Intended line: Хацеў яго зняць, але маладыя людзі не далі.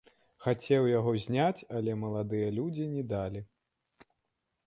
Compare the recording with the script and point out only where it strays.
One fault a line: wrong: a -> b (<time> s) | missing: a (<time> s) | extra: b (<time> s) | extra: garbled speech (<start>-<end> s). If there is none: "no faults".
no faults